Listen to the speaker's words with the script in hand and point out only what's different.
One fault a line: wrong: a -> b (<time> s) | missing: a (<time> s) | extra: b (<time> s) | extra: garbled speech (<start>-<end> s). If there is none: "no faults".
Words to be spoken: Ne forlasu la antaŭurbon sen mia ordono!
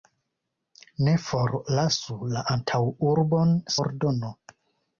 missing: sen mia (3.5 s)